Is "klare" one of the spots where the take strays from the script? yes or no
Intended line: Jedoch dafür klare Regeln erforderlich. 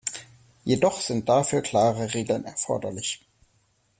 no